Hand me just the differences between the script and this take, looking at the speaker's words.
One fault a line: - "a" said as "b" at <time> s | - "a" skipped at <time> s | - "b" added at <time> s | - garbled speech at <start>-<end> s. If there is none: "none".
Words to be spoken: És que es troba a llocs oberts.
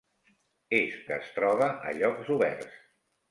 none